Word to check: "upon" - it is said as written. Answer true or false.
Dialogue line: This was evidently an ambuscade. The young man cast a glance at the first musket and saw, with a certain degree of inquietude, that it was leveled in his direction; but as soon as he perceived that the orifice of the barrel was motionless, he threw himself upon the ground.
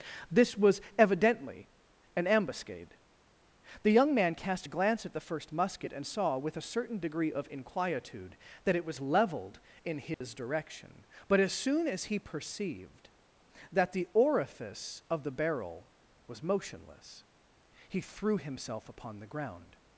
true